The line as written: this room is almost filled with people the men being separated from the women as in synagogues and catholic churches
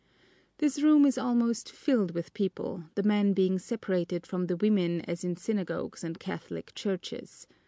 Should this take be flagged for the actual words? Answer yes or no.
no